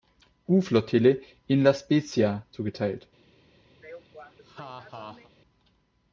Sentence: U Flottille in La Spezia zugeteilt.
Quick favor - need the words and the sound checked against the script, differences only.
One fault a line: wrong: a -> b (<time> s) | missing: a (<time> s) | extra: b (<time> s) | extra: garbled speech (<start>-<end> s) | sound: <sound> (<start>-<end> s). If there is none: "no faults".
sound: laugh (3.8-5.3 s)